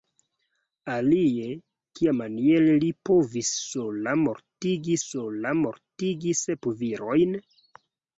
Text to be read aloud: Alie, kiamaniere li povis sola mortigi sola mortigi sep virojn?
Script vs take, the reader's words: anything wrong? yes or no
no